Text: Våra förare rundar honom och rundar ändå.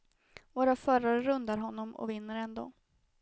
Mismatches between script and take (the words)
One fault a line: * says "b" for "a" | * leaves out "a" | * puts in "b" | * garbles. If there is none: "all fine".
* says "vinner" for "rundar"